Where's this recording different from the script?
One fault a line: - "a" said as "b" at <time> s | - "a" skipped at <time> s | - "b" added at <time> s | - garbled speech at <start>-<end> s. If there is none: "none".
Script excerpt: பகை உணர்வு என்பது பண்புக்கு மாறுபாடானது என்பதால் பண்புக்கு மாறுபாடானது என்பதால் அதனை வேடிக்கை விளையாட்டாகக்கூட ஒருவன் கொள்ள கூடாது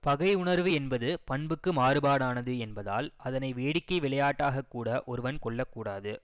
- "பண்புக்கு மாறுபாடானது என்பதால்" skipped at 3.1 s